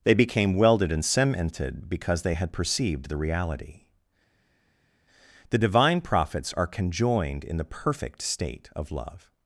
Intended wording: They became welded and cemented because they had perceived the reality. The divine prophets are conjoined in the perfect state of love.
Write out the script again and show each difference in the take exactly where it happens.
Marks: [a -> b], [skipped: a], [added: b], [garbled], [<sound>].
They became welded and cemented because they had perceived the reality. The divine prophets are conjoined in the perfect state of love.